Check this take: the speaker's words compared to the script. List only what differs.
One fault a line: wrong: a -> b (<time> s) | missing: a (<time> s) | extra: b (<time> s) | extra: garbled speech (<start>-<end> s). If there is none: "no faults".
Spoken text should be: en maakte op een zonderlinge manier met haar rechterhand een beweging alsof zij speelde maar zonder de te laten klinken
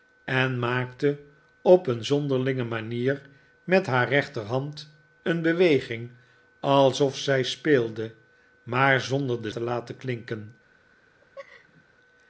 no faults